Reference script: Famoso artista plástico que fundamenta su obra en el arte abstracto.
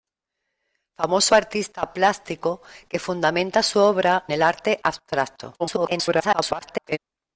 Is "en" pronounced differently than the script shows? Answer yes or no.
yes